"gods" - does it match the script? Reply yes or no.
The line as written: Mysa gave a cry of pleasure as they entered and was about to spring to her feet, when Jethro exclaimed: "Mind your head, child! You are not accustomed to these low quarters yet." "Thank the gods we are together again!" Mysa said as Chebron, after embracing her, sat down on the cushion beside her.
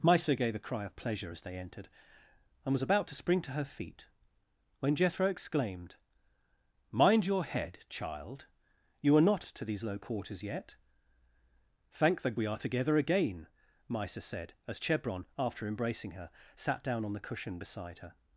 no